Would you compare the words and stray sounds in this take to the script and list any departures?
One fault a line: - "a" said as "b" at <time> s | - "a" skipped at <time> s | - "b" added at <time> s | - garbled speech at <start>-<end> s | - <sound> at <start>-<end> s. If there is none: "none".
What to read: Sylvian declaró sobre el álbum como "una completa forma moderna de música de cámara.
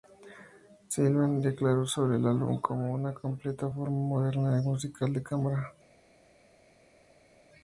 none